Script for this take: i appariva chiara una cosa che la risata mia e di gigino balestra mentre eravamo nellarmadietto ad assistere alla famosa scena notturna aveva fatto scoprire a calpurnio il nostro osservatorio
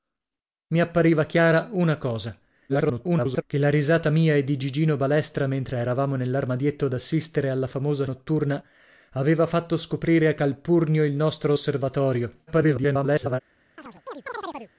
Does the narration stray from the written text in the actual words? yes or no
yes